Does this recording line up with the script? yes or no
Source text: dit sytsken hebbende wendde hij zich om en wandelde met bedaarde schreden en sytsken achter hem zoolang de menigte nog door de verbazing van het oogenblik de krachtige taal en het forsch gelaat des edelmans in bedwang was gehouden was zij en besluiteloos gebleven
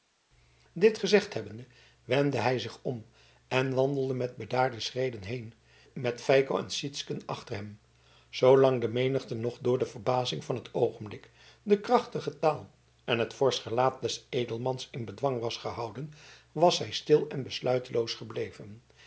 no